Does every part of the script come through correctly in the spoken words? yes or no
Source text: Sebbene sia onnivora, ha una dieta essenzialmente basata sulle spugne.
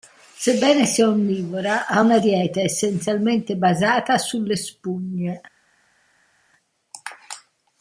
yes